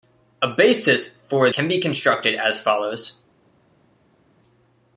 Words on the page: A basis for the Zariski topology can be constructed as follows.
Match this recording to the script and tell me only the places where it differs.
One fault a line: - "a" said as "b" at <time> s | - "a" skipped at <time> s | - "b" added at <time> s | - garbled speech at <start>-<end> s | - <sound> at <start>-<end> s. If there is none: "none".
- "the Zariski topology" skipped at 1.5 s